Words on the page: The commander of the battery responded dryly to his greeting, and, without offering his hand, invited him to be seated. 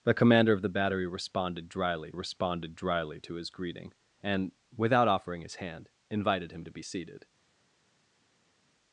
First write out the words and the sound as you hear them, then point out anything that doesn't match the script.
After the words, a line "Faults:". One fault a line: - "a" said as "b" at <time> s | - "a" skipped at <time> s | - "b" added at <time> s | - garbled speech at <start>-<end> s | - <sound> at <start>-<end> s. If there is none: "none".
The commander of the battery responded dryly responded dryly to his greeting, and, without offering his hand, invited him to be seated.
Faults:
- "responded dryly" added at 2.1 s